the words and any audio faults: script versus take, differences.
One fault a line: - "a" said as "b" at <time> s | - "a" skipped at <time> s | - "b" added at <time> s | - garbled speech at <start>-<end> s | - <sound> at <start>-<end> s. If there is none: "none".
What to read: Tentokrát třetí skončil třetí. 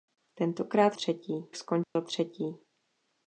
- dropout at 1.8-2.0 s